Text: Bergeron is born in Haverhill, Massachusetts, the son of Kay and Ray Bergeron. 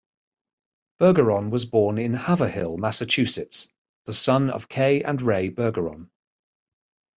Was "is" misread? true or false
true